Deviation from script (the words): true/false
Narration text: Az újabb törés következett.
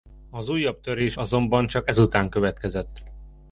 true